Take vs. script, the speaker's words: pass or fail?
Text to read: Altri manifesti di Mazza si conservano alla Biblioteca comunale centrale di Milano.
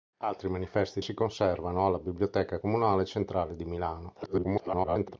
fail